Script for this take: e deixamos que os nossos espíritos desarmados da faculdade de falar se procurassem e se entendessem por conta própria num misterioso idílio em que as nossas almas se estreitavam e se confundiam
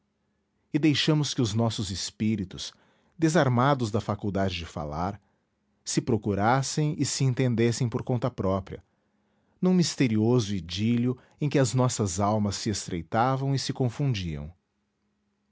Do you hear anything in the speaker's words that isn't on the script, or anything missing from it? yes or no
no